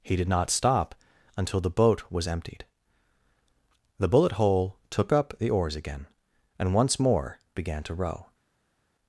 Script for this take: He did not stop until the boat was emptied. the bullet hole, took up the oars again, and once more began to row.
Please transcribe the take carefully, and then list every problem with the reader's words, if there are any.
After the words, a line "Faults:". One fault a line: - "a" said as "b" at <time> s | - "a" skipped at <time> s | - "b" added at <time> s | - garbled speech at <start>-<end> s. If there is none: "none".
He did not stop until the boat was emptied. the bullet hole, took up the oars again, and once more began to row.
Faults:
none